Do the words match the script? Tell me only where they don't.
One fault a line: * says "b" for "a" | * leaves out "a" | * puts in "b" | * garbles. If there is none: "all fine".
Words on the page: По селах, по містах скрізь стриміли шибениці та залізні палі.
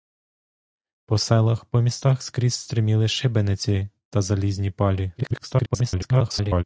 * garbles